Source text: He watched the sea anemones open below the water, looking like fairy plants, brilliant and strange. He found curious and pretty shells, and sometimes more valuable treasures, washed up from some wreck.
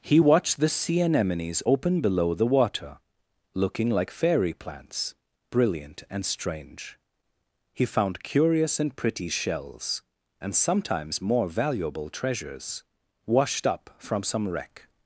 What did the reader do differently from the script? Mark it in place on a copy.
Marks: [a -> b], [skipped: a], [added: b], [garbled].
He watched the sea anemones open below the water, looking like fairy plants, brilliant and strange. He found curious and pretty shells, and sometimes more valuable treasures, washed up from some wreck.